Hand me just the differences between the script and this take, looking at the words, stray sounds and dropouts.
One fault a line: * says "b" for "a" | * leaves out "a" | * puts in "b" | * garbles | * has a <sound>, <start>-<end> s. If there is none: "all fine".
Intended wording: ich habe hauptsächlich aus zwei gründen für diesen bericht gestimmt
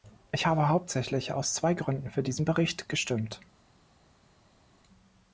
all fine